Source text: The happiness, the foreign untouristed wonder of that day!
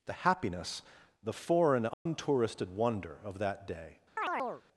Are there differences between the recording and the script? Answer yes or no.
no